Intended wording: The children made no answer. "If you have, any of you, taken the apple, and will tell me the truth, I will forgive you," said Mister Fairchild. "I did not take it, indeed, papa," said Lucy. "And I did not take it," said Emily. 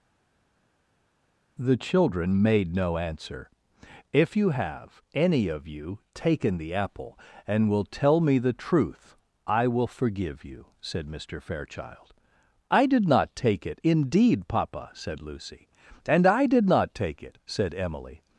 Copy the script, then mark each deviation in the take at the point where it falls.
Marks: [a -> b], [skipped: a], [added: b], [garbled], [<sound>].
The children made no answer. "If you have, any of you, taken the apple, and will tell me the truth, I will forgive you," said Mister Fairchild. "I did not take it, indeed, papa," said Lucy. "And I did not take it," said Emily.